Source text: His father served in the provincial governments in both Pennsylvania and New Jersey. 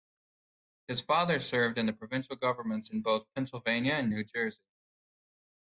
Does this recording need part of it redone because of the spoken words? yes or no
no